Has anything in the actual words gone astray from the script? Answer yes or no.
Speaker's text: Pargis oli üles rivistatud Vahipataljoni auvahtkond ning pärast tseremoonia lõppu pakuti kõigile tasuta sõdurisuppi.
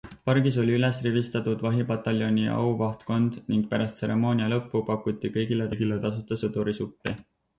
yes